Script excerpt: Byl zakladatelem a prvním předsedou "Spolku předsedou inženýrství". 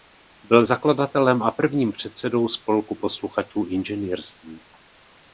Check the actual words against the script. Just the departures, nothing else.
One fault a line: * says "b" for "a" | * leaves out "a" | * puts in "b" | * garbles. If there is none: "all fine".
* says "posluchačů" for "předsedou"